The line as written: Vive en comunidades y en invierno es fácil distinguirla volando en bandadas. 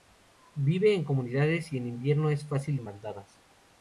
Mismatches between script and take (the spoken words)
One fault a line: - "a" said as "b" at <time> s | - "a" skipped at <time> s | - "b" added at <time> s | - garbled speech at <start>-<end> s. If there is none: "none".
- "distinguirla volando" skipped at 2.8 s